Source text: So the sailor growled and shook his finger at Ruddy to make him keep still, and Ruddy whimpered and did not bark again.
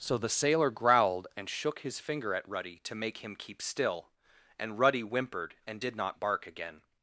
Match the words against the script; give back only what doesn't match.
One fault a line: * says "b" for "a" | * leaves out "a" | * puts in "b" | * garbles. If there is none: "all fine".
all fine